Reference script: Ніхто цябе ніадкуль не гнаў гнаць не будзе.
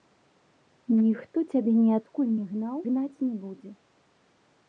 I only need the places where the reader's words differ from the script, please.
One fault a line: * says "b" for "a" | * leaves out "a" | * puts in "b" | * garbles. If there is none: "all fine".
all fine